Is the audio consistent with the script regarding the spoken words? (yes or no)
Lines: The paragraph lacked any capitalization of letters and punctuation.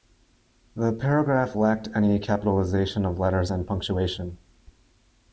yes